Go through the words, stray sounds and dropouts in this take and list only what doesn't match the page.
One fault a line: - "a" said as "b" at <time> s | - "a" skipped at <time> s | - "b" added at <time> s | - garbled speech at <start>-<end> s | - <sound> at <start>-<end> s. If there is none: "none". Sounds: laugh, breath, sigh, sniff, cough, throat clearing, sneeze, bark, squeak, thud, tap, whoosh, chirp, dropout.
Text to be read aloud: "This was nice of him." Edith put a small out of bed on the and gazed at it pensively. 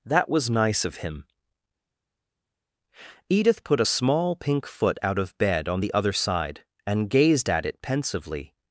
- "This" said as "That" at 0.1 s
- "pink foot" added at 4.4 s
- "other side" added at 5.9 s